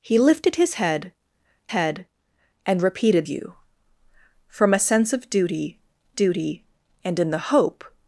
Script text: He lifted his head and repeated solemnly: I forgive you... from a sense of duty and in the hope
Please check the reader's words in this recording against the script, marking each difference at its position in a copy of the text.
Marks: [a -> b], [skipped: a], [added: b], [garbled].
He lifted his head [added: head] and repeated [skipped: solemnly: I forgive] you... from a sense of duty [added: duty] and in the hope